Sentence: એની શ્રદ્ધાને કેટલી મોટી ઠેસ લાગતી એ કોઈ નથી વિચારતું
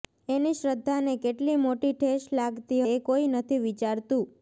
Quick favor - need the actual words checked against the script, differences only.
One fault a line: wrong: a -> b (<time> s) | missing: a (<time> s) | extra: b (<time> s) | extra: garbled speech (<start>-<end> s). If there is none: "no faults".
no faults